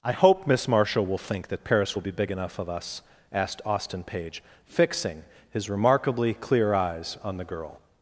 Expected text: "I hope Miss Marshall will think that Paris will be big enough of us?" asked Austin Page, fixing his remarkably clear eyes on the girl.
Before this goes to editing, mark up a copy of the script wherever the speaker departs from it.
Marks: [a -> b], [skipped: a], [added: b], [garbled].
"I hope Miss Marshall will think that Paris will be big enough of us?" asked Austin Page, fixing his remarkably clear eyes on the girl.